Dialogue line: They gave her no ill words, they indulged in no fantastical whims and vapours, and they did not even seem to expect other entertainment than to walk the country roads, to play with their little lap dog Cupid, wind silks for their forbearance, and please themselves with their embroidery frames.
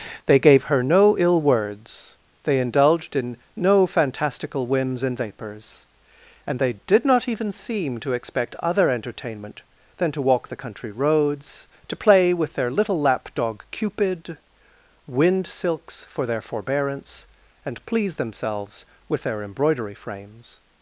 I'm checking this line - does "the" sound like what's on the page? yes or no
yes